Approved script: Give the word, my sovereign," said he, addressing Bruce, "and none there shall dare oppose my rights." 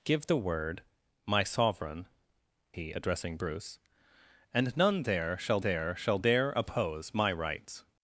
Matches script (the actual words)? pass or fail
fail